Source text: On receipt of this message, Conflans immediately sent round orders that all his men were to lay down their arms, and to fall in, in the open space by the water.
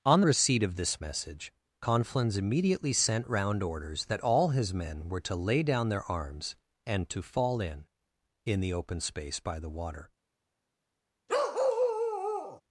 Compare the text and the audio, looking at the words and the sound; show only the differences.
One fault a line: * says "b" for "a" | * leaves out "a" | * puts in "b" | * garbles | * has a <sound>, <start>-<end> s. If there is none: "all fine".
* has a bark, 11.3-12.6 s